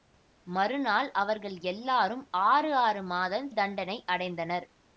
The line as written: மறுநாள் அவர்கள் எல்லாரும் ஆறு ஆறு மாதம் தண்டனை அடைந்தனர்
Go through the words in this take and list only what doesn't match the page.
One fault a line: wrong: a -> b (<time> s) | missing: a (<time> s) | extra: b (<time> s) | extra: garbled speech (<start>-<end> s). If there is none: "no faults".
no faults